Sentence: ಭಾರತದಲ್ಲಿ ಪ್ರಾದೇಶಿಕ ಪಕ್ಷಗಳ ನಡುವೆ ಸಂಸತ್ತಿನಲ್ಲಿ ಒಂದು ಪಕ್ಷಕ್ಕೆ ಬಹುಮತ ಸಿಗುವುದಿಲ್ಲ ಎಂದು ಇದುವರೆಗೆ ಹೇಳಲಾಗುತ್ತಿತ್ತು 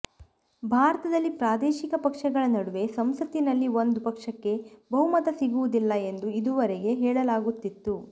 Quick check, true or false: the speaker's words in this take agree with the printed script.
true